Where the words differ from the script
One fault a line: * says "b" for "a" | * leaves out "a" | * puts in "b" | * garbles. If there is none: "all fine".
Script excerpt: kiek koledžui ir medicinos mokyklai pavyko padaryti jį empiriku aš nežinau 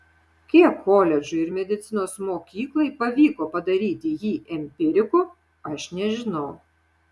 all fine